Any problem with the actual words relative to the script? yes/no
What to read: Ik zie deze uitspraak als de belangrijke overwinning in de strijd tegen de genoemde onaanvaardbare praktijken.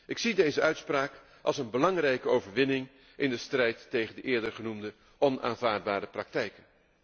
yes